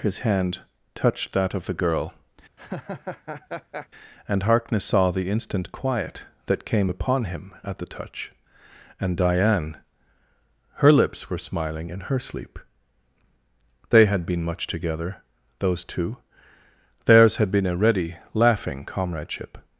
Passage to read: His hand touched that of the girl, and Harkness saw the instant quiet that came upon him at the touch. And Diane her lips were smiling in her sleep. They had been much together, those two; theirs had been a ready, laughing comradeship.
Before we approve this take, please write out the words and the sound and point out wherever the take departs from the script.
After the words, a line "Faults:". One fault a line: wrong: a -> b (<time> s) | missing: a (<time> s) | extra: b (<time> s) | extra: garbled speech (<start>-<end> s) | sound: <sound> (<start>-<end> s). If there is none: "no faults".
His hand touched that of the girl, and Harkness saw the instant quiet that came upon him at the touch. And Diane her lips were smiling in her sleep. They had been much together, those two; theirs had been a ready, laughing comradeship.
Faults:
sound: laugh (2.6-3.9 s)